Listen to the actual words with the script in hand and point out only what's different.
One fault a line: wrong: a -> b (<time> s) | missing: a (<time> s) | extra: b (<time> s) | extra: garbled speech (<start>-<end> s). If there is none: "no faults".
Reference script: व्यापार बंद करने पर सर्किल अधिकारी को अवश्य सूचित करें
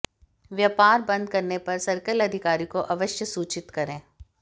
no faults